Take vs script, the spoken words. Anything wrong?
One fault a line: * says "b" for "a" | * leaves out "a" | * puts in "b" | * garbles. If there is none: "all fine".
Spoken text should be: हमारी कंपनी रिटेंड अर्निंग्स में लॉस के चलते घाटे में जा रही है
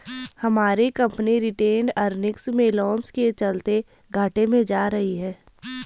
all fine